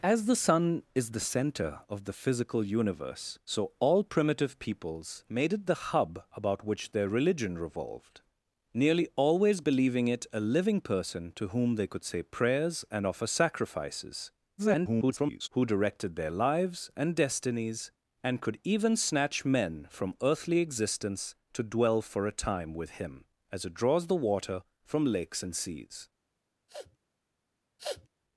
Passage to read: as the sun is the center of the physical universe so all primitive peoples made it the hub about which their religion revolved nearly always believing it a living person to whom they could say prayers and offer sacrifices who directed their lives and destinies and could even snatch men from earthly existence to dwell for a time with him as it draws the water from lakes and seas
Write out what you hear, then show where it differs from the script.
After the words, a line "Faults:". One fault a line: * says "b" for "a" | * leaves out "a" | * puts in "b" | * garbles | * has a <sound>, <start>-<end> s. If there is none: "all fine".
as the sun is the center of the physical universe so all primitive peoples made it the hub about which their religion revolved nearly always believing it a living person to whom they could say prayers and offer sacrifices [garbled] who directed their lives and destinies and could even snatch men from earthly existence to dwell for a time with him as it draws the water from lakes and seas
Faults:
* garbles
* has a sniff, 26.7-27.0 s
* has a sniff, 27.8-28.1 s